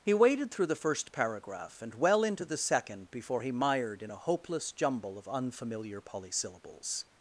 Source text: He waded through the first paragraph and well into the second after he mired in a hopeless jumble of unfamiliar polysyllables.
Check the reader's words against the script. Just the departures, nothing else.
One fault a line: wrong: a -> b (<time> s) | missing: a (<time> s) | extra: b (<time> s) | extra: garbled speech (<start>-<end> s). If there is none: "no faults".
wrong: after -> before (3.1 s)